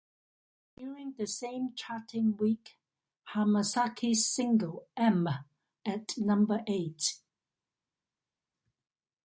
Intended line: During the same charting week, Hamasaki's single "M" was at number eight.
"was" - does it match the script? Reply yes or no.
no